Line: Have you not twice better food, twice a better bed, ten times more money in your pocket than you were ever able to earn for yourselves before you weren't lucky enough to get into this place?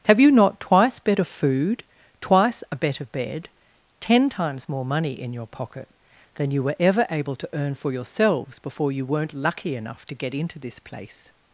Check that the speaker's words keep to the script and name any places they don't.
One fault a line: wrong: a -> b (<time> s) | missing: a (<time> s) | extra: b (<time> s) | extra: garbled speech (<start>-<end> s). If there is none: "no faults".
no faults